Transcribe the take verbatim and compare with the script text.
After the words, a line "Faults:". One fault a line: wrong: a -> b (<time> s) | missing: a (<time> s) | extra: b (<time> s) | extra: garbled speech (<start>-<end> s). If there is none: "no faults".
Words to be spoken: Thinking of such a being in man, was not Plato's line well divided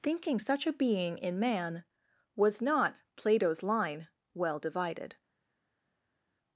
Thinking such a being in man, was not Plato's line well divided
Faults:
missing: of (0.4 s)